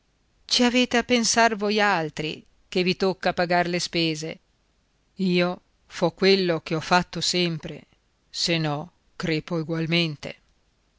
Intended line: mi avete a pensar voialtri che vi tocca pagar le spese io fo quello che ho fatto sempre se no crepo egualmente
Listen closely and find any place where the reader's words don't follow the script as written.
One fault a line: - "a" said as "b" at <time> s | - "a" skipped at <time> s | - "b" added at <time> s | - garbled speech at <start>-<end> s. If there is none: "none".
- "mi" said as "ci" at 0.5 s